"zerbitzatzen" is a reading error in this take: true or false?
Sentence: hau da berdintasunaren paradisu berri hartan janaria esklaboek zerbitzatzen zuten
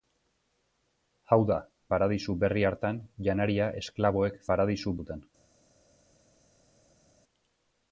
true